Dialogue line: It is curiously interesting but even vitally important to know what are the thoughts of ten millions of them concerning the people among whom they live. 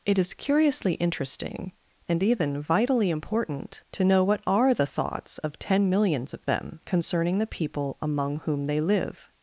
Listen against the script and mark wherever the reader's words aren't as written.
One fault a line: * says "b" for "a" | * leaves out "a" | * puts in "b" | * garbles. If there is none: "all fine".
* says "and" for "but"